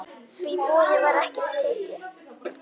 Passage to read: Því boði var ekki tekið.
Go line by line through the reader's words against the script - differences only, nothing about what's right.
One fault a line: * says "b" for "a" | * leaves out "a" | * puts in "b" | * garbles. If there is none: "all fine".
all fine